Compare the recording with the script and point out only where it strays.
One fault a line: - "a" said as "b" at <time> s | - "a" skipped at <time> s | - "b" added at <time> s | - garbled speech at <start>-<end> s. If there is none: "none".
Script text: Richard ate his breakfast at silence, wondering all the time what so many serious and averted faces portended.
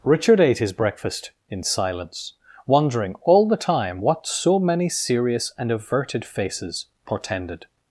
- "at" said as "in" at 1.5 s